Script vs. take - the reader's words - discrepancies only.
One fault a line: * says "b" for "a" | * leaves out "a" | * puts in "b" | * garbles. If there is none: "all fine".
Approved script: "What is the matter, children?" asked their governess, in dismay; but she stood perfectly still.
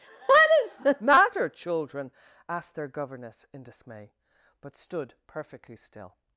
* leaves out "she"